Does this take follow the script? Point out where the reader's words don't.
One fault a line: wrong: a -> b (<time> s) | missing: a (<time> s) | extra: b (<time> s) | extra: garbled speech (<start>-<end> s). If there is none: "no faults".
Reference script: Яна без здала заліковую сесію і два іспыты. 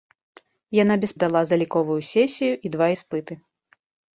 no faults